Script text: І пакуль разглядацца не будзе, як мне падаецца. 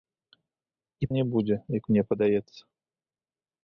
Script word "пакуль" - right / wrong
wrong